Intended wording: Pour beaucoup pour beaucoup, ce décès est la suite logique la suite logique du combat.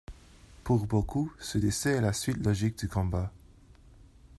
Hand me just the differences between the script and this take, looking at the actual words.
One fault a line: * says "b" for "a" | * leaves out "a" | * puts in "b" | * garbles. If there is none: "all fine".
* leaves out "pour beaucoup"
* leaves out "la suite logique"